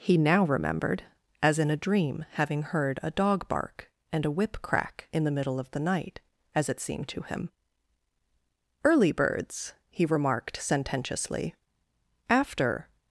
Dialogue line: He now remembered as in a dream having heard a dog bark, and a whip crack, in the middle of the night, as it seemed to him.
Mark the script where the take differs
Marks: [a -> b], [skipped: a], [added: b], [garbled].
He now remembered as in a dream having heard a dog bark, and a whip crack, in the middle of the night, as it seemed to him. [added: Early birds he remarked sententiously after]